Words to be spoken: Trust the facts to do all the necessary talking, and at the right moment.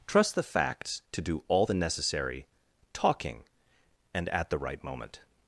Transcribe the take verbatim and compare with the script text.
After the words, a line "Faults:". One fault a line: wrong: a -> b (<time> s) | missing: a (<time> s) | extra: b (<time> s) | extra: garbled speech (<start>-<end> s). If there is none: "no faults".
Trust the facts to do all the necessary talking, and at the right moment.
Faults:
no faults